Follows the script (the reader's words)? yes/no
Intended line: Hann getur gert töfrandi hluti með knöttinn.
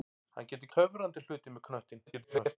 no